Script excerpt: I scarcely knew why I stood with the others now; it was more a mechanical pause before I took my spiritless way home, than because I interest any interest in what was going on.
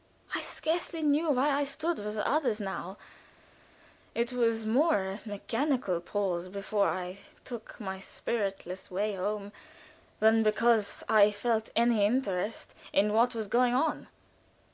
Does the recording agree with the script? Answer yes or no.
no